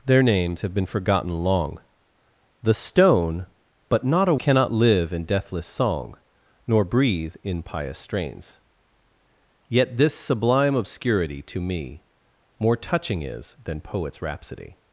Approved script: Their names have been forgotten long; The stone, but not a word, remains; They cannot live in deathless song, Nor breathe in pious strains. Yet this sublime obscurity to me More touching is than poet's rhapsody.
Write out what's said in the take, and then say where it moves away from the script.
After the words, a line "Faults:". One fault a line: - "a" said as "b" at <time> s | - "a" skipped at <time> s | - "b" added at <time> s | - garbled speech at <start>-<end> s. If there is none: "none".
Their names have been forgotten long; The stone, but not a cannot live in deathless song, Nor breathe in pious strains. Yet this sublime obscurity to me More touching is than poet's rhapsody.
Faults:
- "word remains They" skipped at 4.3 s